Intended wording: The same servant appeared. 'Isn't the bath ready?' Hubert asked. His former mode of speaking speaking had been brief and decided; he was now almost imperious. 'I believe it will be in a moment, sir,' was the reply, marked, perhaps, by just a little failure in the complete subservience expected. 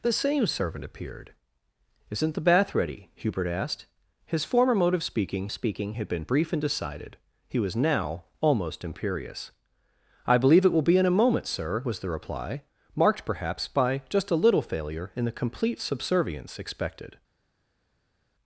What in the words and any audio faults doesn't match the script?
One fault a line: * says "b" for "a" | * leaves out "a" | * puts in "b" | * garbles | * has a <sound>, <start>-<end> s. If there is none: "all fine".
all fine